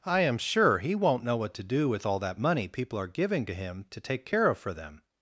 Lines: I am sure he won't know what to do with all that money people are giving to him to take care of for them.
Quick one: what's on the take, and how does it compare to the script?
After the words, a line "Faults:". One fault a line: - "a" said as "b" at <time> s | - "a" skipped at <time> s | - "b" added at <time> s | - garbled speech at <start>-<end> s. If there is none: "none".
I am sure he won't know what to do with all that money people are giving to him to take care of for them.
Faults:
none